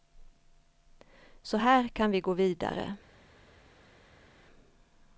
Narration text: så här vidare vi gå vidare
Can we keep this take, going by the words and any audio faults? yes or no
no